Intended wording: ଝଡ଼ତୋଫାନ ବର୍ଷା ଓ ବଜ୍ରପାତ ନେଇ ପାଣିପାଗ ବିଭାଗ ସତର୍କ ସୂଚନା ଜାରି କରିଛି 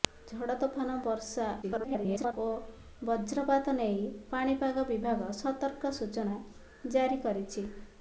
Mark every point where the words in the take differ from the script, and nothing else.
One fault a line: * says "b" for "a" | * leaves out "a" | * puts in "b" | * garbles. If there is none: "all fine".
* garbles